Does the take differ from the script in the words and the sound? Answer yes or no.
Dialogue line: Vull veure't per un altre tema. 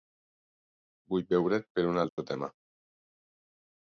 yes